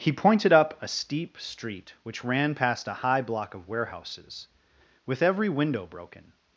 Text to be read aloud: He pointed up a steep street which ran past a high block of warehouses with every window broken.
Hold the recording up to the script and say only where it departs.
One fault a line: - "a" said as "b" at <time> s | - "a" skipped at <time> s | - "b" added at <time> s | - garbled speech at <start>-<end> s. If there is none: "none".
none